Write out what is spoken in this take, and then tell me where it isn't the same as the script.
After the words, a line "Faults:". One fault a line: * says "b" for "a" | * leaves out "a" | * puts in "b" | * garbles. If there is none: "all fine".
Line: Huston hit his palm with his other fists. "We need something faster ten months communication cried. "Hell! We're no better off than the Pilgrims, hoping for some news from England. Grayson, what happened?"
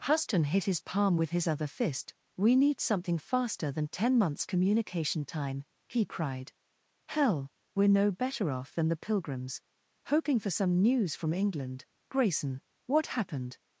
Huston hit his palm with his other fist. "We need something faster than ten months communication time!" he cried. "Hell! We're no better off than the Pilgrims, hoping for some news from England. Grayson, what happened?"
Faults:
* says "fist" for "fists"
* puts in "than"
* puts in "time he"